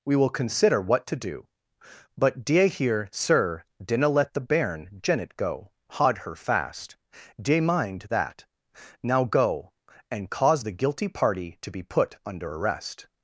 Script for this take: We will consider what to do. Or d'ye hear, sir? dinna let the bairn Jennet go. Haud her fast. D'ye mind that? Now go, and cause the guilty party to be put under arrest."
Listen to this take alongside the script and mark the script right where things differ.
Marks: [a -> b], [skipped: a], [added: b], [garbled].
We will consider what to do. [Or -> But] d'ye hear, sir? dinna let the bairn Jennet go. Haud her fast. D'ye mind that? Now go, and cause the guilty party to be put under arrest."